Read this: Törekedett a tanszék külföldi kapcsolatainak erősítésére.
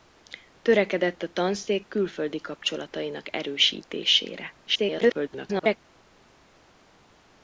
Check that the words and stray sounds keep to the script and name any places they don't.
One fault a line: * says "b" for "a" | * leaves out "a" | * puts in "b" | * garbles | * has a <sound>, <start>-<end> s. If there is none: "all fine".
* garbles